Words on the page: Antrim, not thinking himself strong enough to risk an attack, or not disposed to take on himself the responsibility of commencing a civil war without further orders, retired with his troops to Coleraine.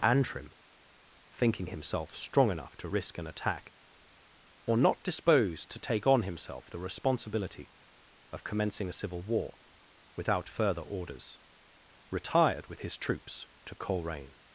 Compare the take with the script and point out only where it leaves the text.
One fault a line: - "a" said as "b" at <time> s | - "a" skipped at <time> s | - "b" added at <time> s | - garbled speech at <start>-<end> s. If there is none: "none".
- "not" skipped at 0.5 s